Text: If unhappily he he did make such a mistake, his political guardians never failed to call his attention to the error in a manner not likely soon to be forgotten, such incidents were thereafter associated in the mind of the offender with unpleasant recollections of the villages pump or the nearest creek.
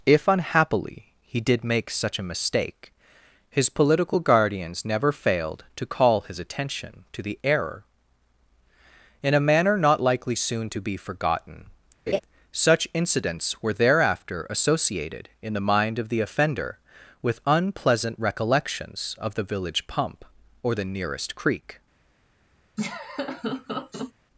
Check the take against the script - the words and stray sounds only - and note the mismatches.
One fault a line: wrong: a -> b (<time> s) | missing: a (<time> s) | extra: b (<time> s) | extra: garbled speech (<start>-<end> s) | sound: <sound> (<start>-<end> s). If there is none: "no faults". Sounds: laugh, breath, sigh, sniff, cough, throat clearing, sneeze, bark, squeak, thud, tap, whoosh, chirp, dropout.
missing: he (1.4 s)
sound: laugh (12.1-12.2 s)
wrong: villages -> village (19.4 s)
sound: laugh (22.8-24.1 s)